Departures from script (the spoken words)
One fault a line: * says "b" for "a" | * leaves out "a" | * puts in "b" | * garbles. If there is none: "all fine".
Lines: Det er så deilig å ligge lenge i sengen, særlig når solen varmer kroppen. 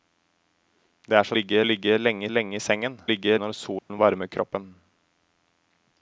* says "ligge" for "deilig"
* puts in "lenge"
* says "ligge" for "særlig"